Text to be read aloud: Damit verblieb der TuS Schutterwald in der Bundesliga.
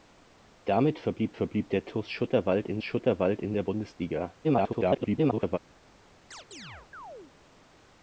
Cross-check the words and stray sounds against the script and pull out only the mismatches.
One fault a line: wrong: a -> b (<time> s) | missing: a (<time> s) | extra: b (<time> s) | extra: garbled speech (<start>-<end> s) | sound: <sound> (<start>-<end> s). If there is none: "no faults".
extra: verblieb (1.3 s)
extra: Schutterwald in (2.8 s)
extra: garbled speech (4.4-5.6 s)
sound: chirp (6.3-7.3 s)